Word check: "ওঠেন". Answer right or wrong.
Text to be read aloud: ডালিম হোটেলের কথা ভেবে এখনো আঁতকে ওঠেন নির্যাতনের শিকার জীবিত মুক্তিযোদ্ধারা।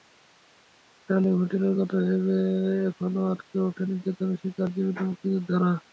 right